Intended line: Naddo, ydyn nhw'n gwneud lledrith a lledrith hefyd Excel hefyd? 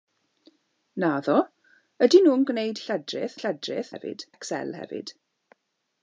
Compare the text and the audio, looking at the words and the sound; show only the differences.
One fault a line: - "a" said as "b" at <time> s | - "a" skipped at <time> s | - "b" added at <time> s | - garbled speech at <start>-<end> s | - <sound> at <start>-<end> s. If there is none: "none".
none